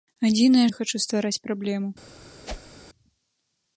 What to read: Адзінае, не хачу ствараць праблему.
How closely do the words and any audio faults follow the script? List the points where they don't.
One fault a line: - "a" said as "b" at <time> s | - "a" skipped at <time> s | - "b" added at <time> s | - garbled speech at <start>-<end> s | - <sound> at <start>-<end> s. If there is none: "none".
- whoosh at 2.4-2.8 s